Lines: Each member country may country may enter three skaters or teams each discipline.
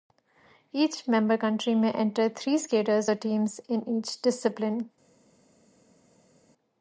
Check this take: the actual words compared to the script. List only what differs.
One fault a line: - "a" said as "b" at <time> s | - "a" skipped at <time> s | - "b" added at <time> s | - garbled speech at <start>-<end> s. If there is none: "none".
- "country may" skipped at 1.9 s
- "in" added at 3.7 s